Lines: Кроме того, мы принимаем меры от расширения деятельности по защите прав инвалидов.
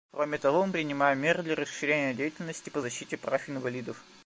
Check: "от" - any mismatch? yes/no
yes